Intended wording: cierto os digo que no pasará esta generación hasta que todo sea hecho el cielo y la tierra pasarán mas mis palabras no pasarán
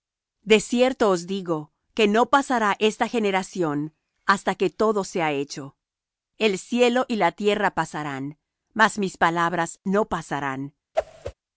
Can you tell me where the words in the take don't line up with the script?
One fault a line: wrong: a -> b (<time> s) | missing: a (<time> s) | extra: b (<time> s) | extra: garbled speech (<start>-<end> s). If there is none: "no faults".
no faults